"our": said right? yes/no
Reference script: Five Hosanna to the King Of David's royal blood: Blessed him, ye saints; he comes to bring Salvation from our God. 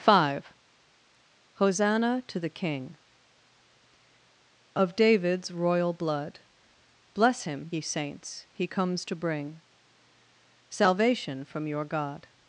no